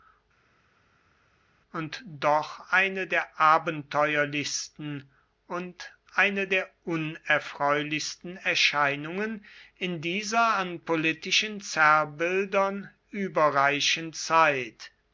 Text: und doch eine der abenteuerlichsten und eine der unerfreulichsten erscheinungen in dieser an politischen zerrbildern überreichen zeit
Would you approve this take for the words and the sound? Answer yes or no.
yes